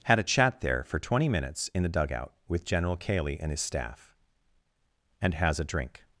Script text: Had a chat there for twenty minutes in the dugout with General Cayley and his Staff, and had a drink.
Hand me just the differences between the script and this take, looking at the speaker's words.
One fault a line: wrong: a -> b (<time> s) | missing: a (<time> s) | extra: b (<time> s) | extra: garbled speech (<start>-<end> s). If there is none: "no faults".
wrong: had -> has (5.3 s)